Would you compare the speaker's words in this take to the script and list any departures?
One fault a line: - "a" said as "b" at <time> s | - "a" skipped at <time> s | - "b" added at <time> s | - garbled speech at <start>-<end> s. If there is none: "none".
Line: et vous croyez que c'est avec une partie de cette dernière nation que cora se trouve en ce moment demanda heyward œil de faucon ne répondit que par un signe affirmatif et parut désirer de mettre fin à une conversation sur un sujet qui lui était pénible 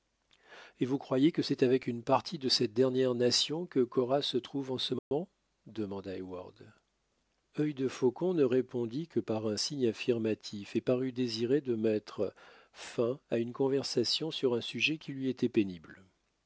none